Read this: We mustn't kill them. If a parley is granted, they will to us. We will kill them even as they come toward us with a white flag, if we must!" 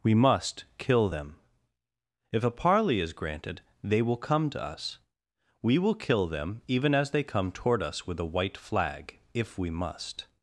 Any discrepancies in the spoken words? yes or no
yes